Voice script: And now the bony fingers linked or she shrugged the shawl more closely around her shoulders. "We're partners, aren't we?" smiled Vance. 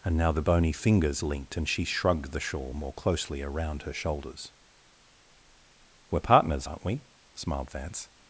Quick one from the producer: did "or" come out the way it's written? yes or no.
no